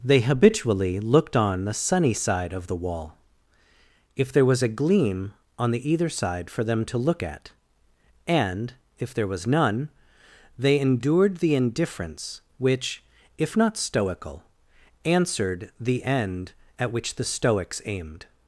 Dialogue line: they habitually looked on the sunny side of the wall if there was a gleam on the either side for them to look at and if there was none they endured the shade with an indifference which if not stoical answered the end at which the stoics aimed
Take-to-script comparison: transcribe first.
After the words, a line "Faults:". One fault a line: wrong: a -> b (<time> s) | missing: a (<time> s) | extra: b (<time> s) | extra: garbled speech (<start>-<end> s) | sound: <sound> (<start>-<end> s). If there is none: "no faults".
they habitually looked on the sunny side of the wall if there was a gleam on the either side for them to look at and if there was none they endured the indifference which if not stoical answered the end at which the stoics aimed
Faults:
missing: shade with an (11.5 s)